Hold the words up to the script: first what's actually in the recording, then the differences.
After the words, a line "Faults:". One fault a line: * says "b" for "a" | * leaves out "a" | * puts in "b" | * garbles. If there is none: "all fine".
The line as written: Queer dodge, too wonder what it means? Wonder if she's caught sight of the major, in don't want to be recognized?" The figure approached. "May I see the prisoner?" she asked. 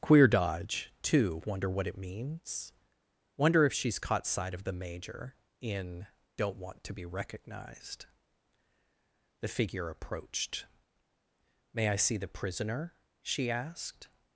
Queer dodge, too wonder what it means? Wonder if she's caught sight of the major, in don't want to be recognized?" The figure approached. "May I see the prisoner?" she asked.
Faults:
all fine